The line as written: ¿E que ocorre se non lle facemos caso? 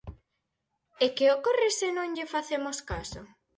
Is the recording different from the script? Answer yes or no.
no